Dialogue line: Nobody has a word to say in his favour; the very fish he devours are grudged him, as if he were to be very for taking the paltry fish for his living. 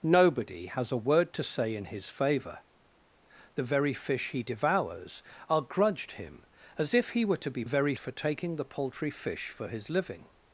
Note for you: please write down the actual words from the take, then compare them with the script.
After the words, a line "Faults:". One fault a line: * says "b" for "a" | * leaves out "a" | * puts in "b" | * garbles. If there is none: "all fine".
Nobody has a word to say in his favour; the very fish he devours are grudged him, as if he were to be very for taking the paltry fish for his living.
Faults:
all fine